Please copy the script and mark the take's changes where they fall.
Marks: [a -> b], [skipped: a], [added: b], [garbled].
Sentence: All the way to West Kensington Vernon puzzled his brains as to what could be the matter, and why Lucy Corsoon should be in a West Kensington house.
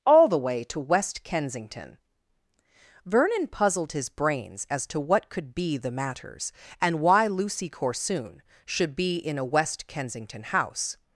All the way to West Kensington Vernon puzzled his brains as to what could be the [matter, -> matters] and why Lucy Corsoon should be in a West Kensington house.